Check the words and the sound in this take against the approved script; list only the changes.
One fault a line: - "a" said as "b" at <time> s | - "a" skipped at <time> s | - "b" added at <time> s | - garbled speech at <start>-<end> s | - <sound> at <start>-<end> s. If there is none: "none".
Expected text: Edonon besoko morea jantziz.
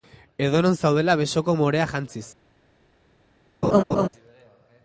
- "zaudela" added at 0.8 s
- laugh at 3.6-4.1 s